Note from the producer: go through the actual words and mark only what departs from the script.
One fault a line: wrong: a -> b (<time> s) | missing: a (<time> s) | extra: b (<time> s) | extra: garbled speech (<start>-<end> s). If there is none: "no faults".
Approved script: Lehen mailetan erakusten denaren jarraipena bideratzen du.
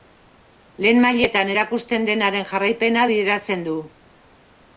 no faults